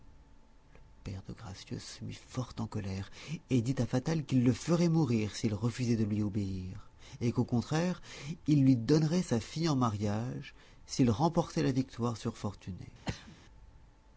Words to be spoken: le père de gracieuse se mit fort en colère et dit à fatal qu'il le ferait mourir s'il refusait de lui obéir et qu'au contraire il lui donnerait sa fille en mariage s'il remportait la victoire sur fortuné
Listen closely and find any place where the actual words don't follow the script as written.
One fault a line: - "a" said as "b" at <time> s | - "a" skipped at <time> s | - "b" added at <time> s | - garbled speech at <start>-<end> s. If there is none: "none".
none